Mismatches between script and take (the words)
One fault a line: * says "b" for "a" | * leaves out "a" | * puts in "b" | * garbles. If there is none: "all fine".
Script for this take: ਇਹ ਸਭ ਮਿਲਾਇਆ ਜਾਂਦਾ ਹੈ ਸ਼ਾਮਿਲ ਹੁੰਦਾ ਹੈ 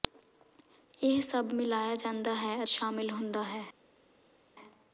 all fine